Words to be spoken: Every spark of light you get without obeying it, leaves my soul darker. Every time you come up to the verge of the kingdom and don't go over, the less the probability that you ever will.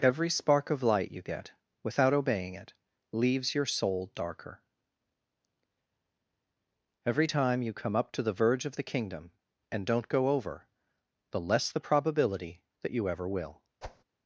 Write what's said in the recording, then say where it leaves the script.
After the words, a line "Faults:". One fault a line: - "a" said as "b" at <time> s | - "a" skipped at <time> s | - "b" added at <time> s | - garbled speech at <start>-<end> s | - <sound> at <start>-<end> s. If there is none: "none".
Every spark of light you get without obeying it, leaves your soul darker. Every time you come up to the verge of the kingdom and don't go over, the less the probability that you ever will.
Faults:
- "my" said as "your" at 3.5 s
- whoosh at 13.8-14.0 s